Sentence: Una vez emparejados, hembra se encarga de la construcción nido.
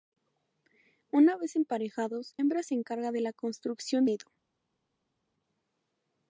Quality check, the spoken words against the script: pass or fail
pass